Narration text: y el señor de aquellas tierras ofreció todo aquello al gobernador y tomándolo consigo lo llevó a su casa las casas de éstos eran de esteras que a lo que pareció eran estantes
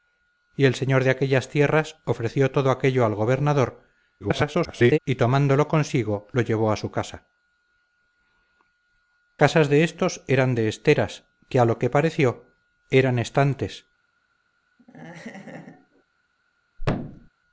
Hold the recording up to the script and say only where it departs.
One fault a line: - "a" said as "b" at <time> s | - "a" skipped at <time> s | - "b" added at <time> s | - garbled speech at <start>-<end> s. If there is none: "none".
- garbled speech at 4.2-5.0 s
- "las" skipped at 7.2 s